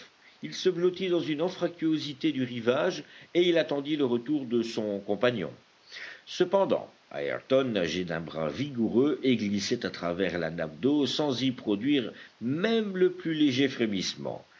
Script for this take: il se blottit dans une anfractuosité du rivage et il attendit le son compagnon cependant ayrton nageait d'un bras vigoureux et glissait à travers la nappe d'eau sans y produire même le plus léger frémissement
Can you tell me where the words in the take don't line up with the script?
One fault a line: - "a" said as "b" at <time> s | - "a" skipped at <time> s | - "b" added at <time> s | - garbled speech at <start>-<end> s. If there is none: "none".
- "retour de" added at 4.0 s